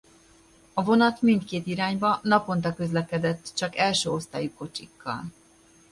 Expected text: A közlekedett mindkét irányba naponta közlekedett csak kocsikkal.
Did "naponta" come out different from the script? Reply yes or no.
no